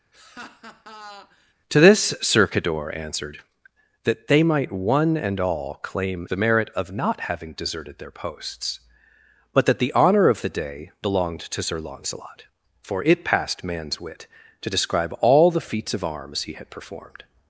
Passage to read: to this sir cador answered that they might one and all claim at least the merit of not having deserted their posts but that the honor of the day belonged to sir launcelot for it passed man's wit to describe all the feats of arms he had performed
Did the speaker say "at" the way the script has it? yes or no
no